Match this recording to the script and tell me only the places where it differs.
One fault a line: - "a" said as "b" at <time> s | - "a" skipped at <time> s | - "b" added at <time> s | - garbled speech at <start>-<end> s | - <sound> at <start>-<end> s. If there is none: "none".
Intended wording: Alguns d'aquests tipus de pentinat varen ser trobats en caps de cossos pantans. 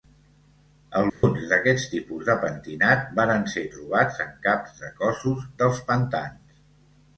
- dropout at 1.1-1.2 s
- "dels" added at 5.6 s